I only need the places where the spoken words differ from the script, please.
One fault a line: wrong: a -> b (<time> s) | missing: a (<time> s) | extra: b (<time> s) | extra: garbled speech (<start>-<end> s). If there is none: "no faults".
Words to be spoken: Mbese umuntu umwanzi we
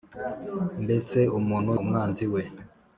no faults